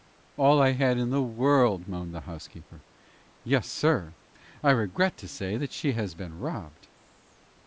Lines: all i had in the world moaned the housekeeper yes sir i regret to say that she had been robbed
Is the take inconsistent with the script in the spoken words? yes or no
yes